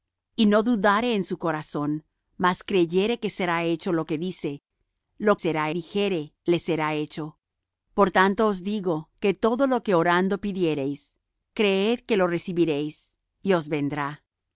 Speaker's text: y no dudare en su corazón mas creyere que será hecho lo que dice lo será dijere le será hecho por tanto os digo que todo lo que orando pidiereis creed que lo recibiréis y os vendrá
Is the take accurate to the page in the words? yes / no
yes